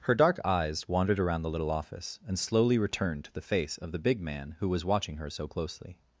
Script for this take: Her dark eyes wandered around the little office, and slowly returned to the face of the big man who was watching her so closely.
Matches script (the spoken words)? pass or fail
pass